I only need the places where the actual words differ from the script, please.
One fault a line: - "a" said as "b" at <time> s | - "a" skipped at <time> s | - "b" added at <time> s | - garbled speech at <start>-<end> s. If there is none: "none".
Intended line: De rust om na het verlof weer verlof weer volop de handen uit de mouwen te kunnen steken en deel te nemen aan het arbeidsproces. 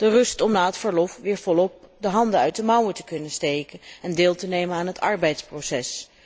- "verlof weer" skipped at 1.4 s